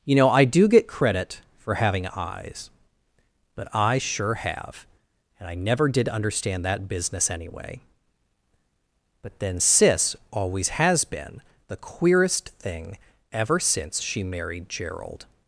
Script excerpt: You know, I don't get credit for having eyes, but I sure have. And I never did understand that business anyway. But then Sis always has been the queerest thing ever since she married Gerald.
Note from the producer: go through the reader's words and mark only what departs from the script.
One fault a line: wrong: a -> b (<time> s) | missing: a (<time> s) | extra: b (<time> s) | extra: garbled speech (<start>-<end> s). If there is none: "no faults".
wrong: don't -> do (0.5 s)